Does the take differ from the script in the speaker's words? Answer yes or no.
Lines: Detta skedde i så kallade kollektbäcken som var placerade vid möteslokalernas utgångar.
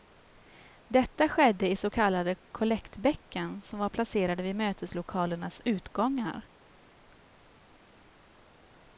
no